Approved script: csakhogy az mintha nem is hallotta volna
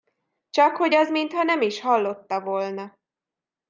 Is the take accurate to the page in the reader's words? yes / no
yes